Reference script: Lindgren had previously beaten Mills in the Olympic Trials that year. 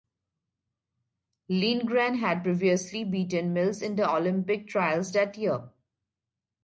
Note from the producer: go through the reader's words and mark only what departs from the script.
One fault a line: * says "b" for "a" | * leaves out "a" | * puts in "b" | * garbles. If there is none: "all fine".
all fine